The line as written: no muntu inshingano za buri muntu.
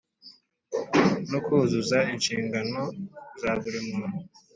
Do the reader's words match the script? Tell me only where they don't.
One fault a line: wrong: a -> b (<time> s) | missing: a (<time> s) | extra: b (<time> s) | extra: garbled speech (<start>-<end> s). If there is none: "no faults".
wrong: muntu -> kuzuza (1.4 s)